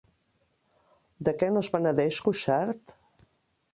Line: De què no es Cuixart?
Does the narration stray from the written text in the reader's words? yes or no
yes